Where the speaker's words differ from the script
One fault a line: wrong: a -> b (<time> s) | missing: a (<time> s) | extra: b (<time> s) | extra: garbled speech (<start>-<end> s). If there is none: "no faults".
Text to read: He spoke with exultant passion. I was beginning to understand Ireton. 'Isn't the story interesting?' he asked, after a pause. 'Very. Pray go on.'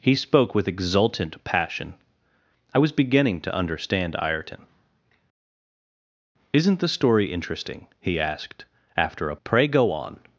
missing: pause Very (9.4 s)